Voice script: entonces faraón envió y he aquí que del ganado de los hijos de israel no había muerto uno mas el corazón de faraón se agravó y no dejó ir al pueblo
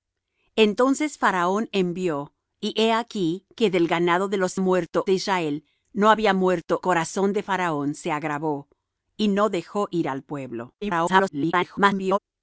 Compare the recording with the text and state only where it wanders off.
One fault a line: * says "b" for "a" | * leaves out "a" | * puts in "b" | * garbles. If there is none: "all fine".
* says "muerto" for "hijos"
* leaves out "uno mas el"
* garbles